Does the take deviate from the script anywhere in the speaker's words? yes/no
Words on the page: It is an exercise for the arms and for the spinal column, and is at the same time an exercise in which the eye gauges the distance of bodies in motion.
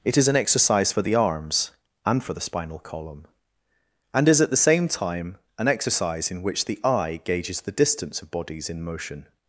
no